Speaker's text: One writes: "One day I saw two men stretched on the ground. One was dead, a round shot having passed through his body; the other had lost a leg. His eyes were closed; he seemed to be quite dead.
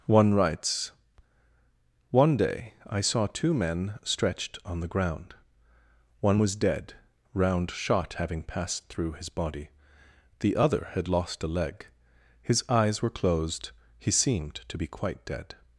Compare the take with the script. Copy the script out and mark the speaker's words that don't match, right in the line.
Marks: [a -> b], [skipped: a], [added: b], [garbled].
One writes: "One day I saw two men stretched on the ground. One was dead, [skipped: a] round shot having passed through his body; the other had lost a leg. His eyes were closed; he seemed to be quite dead.